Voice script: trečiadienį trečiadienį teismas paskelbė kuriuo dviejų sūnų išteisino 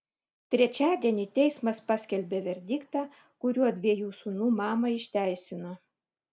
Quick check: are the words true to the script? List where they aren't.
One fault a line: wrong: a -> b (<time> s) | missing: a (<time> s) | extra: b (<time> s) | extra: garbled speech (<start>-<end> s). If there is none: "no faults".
missing: trečiadienį (1.2 s)
extra: verdiktą (2.5 s)
extra: mamą (4.6 s)